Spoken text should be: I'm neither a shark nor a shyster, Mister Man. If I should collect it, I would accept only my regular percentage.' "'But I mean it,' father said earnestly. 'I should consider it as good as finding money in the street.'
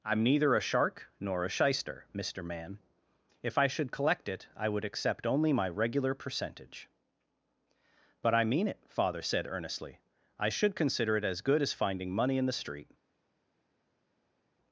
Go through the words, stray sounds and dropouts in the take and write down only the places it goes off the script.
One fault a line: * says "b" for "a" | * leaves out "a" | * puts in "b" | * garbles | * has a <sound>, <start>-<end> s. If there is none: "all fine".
all fine